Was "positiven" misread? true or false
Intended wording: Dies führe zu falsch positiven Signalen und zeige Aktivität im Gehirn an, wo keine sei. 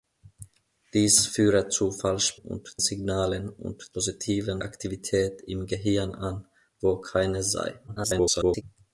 true